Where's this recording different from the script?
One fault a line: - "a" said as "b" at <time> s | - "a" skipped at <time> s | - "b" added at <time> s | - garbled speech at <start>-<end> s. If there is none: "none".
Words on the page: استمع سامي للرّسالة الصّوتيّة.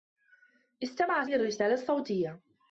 - "سامي" skipped at 1.2 s